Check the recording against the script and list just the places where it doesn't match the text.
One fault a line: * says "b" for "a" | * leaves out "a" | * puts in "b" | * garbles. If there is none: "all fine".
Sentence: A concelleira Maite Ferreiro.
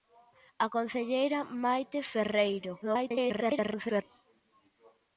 * garbles